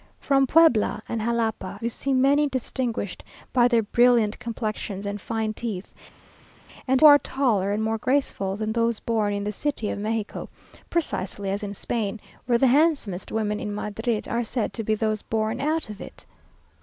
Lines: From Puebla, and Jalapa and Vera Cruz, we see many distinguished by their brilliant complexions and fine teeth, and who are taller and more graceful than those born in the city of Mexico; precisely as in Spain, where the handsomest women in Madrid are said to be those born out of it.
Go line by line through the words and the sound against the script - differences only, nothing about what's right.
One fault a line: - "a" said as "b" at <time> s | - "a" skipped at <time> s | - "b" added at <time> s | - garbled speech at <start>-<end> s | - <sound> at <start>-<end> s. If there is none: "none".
- "and Vera Cruz" skipped at 1.8 s
- "who" skipped at 7.0 s